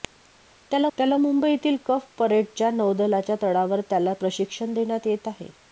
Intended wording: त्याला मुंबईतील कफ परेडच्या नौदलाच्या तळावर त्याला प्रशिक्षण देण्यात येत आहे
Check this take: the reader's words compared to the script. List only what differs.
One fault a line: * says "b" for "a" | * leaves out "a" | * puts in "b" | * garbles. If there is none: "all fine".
* puts in "त्याला"